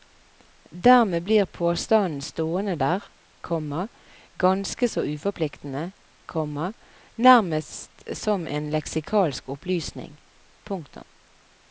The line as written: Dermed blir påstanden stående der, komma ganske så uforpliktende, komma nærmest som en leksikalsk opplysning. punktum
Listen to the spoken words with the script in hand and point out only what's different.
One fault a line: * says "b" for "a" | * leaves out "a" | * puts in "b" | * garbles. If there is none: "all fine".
all fine